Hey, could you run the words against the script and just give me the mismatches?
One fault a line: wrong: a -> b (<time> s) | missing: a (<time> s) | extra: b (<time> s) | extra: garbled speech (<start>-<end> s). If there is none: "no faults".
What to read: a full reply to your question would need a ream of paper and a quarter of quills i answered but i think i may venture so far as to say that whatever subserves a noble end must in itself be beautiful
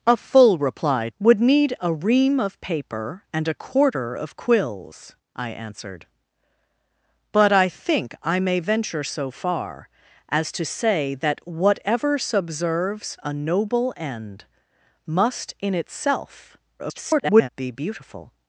missing: to your question (1.1 s)
extra: garbled speech (16.8-17.5 s)